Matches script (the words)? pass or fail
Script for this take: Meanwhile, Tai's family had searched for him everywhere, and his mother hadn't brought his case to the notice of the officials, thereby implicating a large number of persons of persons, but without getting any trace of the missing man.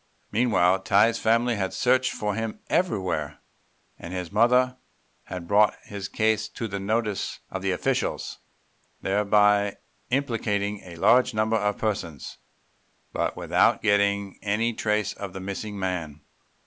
fail